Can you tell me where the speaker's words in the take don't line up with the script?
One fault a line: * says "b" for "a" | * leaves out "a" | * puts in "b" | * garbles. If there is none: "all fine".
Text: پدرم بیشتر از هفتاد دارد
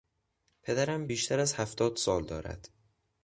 * puts in "سال"